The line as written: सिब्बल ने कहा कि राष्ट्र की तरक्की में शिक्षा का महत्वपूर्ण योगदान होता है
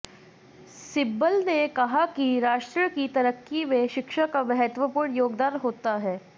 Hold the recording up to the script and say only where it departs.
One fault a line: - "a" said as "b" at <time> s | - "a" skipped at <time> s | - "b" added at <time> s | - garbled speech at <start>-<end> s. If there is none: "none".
none